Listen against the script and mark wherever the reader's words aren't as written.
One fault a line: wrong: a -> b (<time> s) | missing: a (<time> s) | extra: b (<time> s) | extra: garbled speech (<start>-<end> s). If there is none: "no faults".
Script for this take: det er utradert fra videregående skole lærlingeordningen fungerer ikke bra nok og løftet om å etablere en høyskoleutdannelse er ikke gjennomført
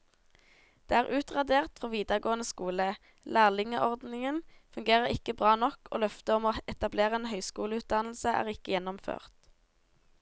no faults